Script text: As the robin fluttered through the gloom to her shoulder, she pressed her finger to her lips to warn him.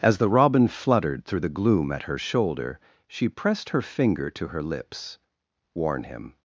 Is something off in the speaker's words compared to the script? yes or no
yes